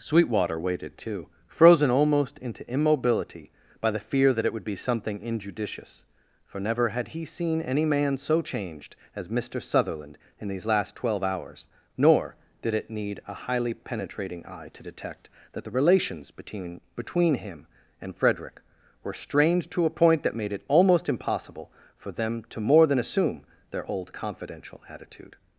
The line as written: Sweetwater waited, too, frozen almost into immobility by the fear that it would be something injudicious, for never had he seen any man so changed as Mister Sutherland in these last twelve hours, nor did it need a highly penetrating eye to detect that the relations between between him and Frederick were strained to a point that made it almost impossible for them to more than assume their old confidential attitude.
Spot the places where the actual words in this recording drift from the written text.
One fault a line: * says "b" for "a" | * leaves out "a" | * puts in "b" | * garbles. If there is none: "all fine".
all fine